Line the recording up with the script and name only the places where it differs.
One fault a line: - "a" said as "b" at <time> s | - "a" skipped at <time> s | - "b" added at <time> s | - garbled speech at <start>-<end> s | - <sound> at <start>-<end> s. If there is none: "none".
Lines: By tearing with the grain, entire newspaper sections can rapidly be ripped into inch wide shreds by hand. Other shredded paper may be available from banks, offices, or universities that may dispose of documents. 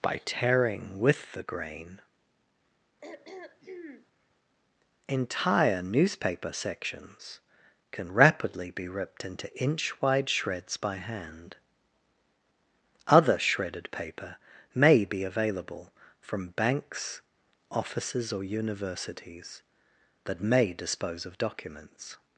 - throat clearing at 3.0-4.1 s